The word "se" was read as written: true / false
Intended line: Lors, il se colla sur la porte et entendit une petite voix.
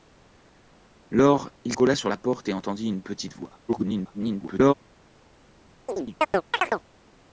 false